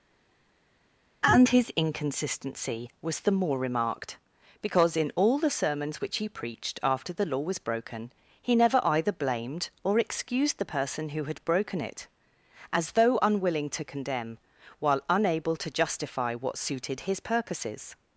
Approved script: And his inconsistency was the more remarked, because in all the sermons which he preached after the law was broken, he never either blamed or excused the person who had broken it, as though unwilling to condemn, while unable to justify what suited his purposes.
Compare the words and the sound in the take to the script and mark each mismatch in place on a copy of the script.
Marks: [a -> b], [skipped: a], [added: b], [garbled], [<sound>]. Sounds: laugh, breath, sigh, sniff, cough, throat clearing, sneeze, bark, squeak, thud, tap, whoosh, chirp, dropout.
And his inconsistency was the more remarked, because in all the sermons which he preached after the law was broken, he never either blamed or excused the person who had broken it, as though unwilling to condemn, while unable to justify what suited his purposes.